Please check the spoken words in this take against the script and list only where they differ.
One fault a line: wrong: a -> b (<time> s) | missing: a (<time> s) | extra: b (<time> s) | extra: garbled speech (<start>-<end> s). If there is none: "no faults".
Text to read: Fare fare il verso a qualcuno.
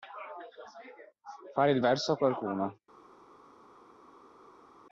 missing: fare (1.7 s)